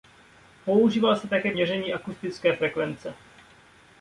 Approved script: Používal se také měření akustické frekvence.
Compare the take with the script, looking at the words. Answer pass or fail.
pass